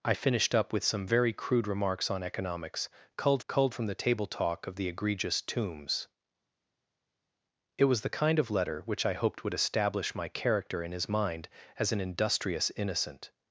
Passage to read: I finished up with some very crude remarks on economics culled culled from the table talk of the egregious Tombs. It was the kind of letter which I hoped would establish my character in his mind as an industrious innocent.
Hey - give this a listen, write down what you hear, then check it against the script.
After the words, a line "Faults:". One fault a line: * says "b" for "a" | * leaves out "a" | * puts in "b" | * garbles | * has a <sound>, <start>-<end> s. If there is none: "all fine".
I finished up with some very crude remarks on economics culled culled from the table talk of the egregious Tombs. It was the kind of letter which I hoped would establish my character in his mind as an industrious innocent.
Faults:
all fine